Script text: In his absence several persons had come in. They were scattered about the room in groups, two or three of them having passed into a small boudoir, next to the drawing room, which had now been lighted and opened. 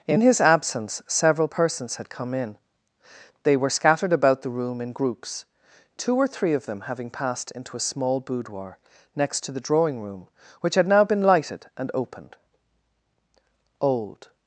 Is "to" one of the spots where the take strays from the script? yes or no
no